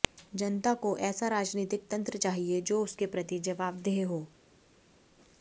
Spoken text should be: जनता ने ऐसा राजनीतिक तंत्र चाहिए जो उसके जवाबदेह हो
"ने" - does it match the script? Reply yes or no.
no